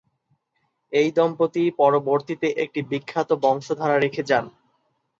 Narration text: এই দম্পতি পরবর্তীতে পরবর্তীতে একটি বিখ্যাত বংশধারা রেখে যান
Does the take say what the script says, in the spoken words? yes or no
no